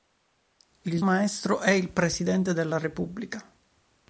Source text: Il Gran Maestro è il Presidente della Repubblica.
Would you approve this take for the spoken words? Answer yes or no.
no